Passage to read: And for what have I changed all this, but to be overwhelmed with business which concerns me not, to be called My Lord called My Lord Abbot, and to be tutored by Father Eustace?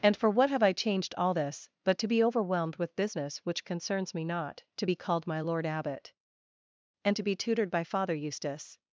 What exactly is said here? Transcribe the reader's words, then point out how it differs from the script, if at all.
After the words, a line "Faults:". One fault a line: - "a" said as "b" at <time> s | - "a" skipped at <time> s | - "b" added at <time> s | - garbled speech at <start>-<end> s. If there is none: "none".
And for what have I changed all this, but to be overwhelmed with business which concerns me not, to be called My Lord Abbot, and to be tutored by Father Eustace?
Faults:
- "called My Lord" skipped at 5.6 s